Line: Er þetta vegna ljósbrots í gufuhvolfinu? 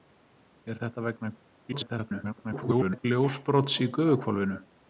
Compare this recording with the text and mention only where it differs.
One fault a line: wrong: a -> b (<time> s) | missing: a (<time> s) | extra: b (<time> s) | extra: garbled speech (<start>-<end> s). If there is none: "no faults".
extra: garbled speech (1.7-3.1 s)